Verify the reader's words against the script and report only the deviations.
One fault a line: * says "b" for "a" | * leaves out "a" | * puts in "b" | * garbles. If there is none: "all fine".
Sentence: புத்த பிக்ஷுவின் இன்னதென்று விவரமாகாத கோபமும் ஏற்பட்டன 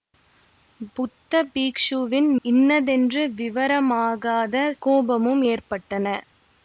all fine